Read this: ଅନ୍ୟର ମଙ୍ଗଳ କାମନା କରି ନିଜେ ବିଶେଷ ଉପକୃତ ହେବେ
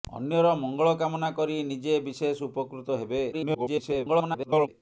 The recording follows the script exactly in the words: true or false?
false